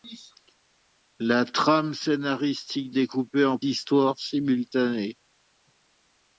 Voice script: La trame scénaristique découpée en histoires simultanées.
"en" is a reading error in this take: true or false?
false